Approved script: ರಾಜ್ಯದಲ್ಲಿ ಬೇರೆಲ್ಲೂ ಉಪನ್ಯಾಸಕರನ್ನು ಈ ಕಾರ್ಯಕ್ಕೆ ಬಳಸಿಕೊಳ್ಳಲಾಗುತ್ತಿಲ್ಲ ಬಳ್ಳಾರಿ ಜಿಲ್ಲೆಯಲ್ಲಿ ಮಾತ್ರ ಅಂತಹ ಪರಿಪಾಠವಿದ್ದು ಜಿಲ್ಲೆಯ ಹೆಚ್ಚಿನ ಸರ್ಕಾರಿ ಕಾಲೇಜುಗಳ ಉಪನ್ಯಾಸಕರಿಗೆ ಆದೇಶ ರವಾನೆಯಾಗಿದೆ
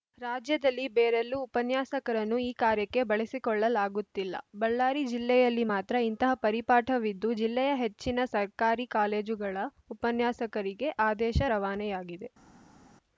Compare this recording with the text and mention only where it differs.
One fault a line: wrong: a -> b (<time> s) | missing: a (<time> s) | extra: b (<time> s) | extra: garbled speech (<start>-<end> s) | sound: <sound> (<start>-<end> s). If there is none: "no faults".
wrong: ಅಂತಹ -> ಇಂತಹ (6.1 s)